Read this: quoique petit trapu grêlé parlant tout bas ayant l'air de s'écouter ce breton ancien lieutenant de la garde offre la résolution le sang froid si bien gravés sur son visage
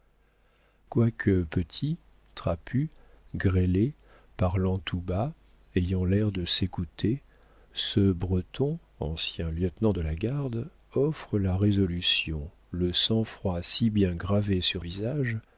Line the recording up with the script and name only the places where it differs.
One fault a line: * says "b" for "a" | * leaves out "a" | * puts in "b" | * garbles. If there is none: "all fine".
* leaves out "son"